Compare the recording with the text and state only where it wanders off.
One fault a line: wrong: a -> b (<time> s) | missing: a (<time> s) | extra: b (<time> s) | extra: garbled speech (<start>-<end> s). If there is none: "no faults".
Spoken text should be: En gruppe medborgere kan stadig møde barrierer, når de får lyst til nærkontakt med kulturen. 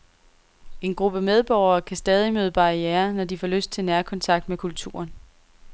no faults